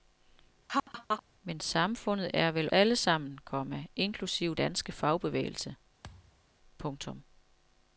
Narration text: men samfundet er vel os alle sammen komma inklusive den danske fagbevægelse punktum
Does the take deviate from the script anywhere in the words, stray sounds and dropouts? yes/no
yes